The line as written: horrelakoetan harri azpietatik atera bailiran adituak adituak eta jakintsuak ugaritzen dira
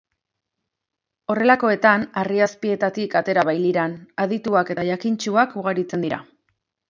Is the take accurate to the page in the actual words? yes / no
no